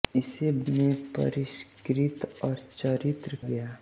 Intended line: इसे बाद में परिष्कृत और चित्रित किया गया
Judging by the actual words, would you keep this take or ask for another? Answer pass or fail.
fail